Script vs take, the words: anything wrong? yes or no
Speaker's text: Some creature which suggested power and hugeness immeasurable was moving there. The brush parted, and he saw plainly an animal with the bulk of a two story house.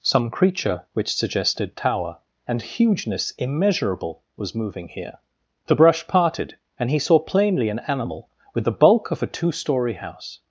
yes